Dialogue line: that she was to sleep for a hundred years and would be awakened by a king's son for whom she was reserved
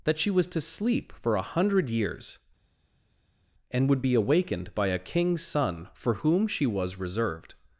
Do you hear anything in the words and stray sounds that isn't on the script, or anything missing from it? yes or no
no